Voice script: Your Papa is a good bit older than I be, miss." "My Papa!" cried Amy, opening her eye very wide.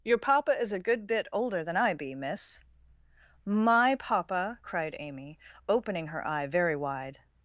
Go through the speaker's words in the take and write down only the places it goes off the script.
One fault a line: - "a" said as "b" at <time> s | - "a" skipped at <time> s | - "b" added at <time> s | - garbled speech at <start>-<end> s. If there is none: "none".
none